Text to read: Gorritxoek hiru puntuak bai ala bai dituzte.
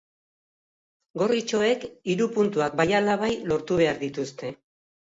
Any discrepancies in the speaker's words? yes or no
yes